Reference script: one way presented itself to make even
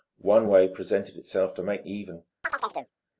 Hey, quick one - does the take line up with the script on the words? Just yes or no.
yes